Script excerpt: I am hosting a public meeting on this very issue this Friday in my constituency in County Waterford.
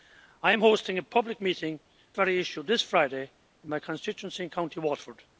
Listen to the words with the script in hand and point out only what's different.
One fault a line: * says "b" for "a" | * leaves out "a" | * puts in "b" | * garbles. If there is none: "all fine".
* leaves out "on this"